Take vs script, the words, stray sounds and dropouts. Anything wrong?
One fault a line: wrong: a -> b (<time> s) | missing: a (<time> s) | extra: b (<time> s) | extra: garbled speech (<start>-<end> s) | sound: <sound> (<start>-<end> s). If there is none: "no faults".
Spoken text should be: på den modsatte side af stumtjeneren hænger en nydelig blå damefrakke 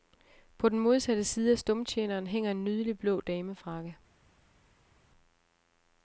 no faults